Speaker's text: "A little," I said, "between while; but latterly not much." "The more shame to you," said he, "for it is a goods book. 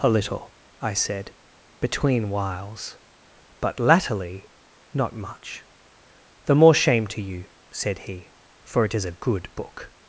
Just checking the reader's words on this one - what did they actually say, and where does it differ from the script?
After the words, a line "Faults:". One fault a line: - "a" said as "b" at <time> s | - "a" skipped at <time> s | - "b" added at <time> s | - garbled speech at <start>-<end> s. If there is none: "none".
"A little," I said, "between whiles; but latterly not much." "The more shame to you," said he, "for it is a good book.
Faults:
- "while" said as "whiles" at 2.3 s
- "goods" said as "good" at 9.2 s